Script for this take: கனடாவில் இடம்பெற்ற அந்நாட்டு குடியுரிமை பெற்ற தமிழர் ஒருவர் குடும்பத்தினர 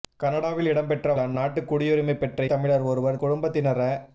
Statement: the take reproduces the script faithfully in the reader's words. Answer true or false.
true